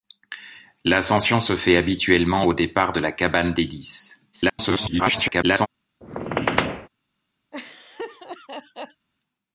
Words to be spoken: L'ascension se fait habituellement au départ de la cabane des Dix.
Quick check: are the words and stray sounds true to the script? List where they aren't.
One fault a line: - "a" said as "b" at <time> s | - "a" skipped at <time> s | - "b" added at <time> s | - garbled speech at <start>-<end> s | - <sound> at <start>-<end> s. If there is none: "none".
- garbled speech at 4.3-5.7 s
- squeak at 6.0-6.9 s
- laugh at 7.5-9.1 s